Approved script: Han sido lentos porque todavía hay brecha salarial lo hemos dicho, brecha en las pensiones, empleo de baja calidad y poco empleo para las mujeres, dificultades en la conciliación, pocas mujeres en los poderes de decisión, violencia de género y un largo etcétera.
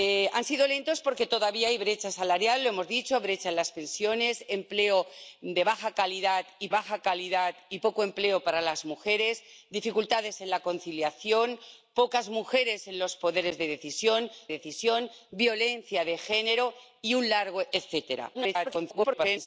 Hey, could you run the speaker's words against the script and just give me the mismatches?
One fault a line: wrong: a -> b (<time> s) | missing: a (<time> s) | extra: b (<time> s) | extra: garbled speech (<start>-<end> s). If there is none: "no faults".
extra: baja calidad y (6.7 s)
extra: decisión (14.5 s)
extra: garbled speech (18.3-19.5 s)